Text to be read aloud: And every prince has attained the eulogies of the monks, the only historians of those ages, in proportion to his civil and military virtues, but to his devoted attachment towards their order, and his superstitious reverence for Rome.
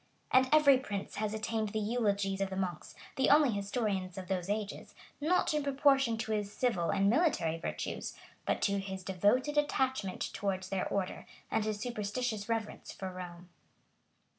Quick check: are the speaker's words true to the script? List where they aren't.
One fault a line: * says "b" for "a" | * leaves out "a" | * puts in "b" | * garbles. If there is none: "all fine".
* puts in "not"